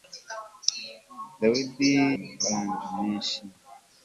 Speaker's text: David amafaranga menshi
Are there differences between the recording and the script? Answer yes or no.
no